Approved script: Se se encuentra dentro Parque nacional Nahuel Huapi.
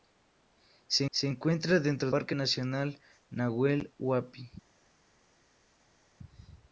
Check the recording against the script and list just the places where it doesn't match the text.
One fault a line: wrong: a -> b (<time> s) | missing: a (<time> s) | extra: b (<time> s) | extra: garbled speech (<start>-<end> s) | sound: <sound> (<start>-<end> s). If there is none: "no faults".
no faults